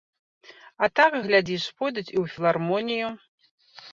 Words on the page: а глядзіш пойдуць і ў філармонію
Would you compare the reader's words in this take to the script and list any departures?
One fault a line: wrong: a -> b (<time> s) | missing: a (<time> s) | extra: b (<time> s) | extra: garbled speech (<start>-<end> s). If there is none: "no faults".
extra: так (1.0 s)